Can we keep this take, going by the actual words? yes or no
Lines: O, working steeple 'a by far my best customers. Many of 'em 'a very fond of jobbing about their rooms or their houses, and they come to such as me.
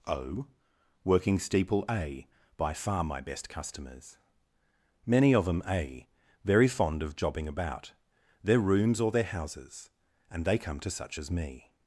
yes